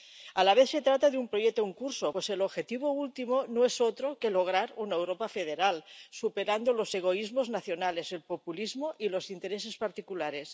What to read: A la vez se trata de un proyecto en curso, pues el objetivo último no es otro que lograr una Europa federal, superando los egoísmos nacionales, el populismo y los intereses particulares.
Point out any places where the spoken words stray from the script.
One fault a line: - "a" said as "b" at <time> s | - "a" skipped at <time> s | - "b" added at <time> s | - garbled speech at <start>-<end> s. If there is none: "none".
none